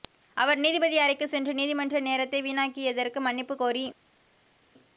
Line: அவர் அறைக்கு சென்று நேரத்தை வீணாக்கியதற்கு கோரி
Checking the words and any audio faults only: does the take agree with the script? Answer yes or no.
no